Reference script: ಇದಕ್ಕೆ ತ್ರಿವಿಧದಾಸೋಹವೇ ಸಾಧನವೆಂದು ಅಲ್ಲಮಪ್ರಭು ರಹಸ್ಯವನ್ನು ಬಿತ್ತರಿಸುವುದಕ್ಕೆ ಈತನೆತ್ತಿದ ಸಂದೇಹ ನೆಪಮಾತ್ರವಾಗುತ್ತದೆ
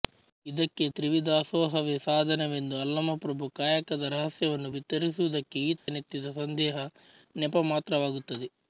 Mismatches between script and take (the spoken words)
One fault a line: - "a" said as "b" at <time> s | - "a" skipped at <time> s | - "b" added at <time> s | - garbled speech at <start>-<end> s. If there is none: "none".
- "ಕಾಯಕದ" added at 3.5 s